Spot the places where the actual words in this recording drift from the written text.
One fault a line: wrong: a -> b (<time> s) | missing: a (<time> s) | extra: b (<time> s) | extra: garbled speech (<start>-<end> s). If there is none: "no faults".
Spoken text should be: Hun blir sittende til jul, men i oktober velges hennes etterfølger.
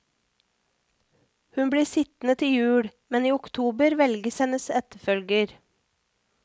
no faults